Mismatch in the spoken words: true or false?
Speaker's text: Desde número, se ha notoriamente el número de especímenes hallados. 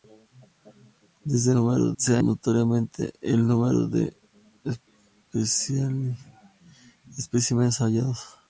false